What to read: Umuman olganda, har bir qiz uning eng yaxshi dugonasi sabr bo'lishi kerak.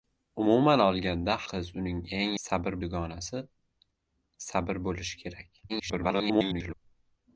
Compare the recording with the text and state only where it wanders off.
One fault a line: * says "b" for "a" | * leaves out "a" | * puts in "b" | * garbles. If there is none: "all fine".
* leaves out "har bir"
* says "sabr" for "yaxshi"
* garbles